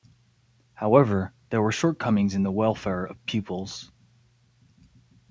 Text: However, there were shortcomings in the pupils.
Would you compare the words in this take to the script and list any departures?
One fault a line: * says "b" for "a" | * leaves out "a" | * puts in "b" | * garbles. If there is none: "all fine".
* puts in "welfare of"